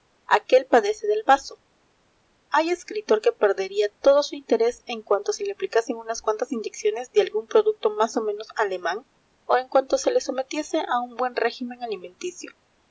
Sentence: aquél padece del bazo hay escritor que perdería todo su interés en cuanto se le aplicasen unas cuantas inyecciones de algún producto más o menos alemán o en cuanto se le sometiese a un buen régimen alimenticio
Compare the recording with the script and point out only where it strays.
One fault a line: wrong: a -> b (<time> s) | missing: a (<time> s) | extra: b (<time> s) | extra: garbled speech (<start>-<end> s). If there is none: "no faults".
no faults